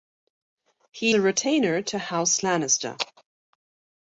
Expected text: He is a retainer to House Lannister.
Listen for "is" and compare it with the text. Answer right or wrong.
wrong